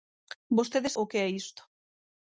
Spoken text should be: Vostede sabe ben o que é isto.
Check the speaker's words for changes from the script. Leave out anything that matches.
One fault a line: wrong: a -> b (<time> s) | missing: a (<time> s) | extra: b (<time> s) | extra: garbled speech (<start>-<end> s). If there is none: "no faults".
missing: sabe ben (0.9 s)